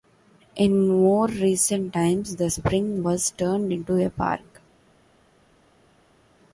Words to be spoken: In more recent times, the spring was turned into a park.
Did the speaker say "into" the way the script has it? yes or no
yes